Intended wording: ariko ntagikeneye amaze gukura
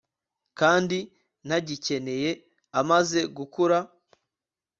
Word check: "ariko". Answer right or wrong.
wrong